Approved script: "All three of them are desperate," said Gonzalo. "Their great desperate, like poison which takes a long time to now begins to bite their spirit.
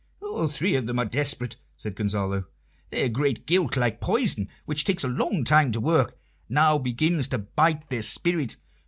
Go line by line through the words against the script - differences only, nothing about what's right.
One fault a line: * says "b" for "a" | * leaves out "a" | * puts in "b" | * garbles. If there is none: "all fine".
* says "guilt" for "desperate"
* puts in "work"